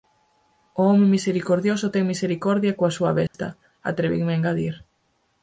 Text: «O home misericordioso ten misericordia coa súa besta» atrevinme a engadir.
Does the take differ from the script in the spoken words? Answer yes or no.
no